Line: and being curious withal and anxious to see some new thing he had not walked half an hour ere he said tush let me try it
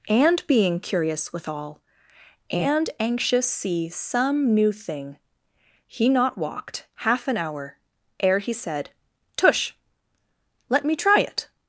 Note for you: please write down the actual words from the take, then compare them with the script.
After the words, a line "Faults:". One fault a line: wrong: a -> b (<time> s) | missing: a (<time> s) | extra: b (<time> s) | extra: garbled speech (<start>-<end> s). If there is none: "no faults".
and being curious withal and anxious see some new thing he not walked half an hour ere he said tush let me try it
Faults:
missing: to (3.5 s)
missing: had (6.1 s)